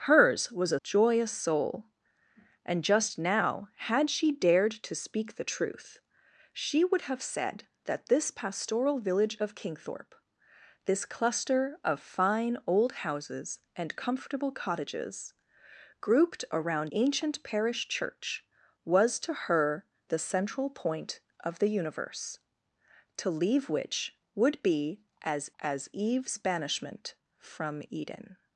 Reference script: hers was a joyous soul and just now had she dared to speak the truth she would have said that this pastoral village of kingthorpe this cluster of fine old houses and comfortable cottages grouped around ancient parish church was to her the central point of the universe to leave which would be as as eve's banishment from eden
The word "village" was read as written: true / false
true